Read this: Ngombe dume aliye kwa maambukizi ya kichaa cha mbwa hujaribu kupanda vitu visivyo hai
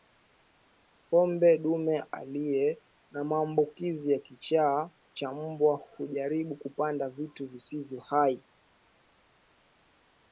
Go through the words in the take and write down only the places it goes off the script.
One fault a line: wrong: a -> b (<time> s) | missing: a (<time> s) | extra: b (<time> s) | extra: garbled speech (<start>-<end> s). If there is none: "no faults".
wrong: kwa -> na (3.1 s)